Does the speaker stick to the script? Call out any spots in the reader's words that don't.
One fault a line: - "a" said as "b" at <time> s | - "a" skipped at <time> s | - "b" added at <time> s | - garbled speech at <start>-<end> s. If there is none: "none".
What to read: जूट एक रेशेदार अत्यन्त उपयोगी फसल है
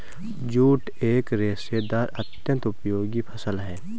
none